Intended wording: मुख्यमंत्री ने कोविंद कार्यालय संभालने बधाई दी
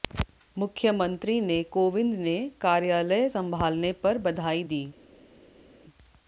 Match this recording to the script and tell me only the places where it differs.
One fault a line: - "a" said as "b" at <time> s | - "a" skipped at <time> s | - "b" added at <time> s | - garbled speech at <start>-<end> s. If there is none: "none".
- "ने" added at 2.2 s
- "पर" added at 4.0 s